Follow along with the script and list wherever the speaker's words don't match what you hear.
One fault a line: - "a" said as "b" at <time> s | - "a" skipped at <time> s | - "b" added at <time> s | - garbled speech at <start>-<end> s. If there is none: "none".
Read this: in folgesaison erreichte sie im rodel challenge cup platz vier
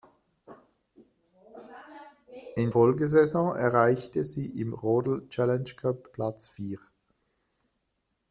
none